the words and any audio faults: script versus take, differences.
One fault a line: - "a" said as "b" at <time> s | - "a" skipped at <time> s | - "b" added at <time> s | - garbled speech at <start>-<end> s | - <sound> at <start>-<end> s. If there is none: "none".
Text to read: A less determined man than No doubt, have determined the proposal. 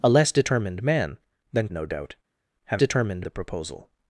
none